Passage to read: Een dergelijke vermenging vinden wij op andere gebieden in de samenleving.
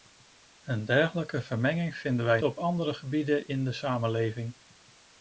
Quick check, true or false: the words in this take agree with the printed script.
true